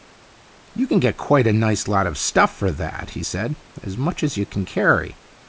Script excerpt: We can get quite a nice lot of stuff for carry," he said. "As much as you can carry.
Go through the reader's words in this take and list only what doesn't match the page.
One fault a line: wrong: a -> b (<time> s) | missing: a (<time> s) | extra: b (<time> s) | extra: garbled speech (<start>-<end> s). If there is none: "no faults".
wrong: We -> You (0.7 s)
wrong: carry -> that (2.7 s)